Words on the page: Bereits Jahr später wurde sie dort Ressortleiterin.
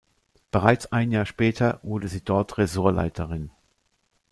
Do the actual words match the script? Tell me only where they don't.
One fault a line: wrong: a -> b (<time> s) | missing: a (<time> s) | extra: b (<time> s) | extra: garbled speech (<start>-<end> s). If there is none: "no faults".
extra: ein (0.9 s)